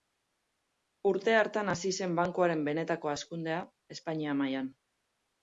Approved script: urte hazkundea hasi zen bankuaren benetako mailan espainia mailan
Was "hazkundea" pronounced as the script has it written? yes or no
no